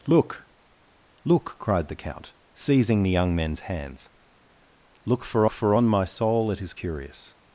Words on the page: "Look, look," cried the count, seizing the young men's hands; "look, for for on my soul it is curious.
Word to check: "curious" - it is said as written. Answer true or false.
true